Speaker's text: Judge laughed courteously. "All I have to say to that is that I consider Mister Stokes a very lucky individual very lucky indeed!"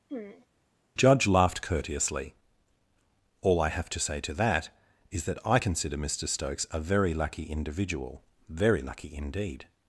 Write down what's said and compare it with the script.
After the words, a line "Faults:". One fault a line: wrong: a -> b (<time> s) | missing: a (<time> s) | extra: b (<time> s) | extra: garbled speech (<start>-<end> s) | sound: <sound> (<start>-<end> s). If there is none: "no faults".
Judge laughed courteously. "All I have to say to that is that I consider Mister Stokes a very lucky individual very lucky indeed!"
Faults:
sound: throat clearing (0.1-0.5 s)